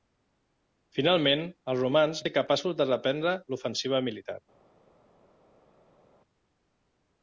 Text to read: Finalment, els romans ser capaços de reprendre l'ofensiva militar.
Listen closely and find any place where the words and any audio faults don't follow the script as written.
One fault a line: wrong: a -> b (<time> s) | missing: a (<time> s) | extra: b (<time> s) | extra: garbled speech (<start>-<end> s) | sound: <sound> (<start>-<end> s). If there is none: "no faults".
no faults